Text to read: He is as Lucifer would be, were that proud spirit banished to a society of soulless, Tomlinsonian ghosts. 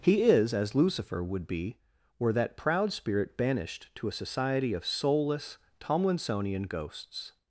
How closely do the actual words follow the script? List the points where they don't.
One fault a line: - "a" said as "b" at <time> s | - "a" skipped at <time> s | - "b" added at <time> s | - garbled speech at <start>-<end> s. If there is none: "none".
none